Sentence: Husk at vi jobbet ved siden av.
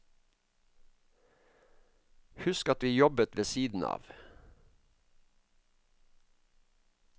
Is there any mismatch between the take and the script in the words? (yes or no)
no